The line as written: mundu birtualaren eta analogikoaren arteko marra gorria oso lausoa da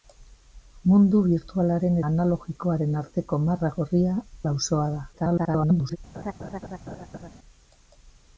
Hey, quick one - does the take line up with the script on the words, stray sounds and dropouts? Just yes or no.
no